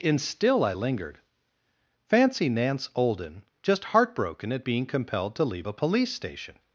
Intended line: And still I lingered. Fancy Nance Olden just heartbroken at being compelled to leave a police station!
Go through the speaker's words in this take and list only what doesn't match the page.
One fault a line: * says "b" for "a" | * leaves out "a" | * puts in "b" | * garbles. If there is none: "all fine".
all fine